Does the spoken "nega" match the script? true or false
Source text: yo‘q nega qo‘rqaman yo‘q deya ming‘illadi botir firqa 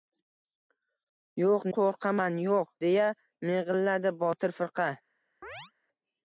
false